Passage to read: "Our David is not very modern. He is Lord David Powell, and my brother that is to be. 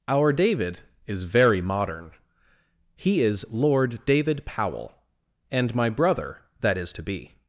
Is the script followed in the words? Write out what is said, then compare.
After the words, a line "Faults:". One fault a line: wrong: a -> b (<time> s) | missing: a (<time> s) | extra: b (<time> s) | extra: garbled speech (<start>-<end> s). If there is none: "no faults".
"Our David is very modern. He is Lord David Powell, and my brother that is to be.
Faults:
missing: not (1.2 s)